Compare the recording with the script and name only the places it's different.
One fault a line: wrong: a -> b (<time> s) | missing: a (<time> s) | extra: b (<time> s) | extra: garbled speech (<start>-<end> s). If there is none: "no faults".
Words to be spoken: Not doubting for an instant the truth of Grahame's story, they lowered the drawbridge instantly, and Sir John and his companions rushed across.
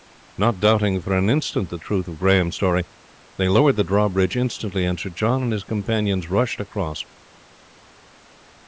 no faults